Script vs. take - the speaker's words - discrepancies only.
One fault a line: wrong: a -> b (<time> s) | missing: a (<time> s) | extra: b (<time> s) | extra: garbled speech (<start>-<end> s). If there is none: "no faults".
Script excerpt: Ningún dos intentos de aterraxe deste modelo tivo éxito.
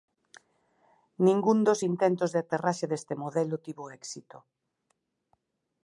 no faults